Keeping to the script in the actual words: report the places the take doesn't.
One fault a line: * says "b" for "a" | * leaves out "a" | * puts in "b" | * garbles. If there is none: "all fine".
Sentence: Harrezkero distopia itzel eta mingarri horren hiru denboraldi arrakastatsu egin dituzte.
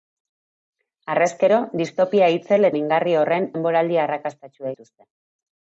* leaves out "eta"
* leaves out "hiru"
* leaves out "egin"